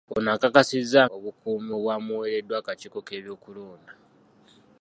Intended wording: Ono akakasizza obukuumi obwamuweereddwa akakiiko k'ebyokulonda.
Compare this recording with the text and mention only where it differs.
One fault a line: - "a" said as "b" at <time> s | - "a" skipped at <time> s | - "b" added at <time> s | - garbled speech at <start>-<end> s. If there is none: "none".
none